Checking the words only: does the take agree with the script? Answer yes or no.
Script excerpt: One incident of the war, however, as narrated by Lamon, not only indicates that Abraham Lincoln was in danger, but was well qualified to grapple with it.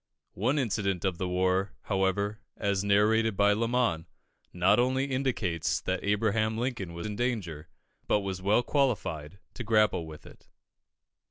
yes